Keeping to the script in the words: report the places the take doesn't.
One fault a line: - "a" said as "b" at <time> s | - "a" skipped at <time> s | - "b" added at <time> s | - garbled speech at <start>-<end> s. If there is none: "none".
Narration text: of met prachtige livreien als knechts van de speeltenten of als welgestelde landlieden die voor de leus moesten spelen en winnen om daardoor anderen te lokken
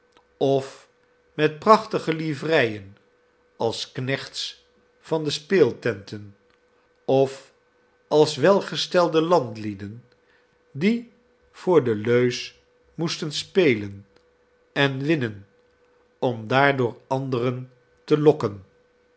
none